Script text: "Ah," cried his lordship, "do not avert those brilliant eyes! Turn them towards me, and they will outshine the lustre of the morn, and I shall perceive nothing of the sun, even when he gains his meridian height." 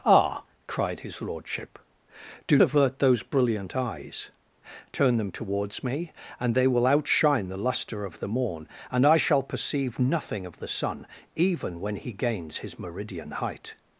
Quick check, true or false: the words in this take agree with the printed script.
false